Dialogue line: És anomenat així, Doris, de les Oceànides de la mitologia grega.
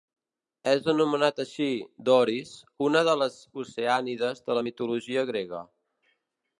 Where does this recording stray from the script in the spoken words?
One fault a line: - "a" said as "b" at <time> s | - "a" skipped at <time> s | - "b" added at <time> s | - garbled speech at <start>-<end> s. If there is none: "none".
- "una" added at 2.9 s